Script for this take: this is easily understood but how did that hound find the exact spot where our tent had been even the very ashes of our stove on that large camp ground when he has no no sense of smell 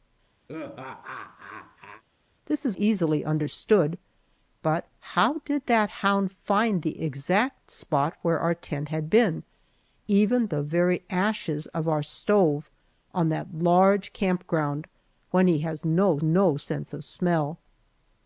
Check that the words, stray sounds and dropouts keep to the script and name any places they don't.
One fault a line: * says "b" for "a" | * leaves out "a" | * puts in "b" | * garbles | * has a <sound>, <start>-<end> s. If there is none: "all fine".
* has a laugh, 0.5-2.0 s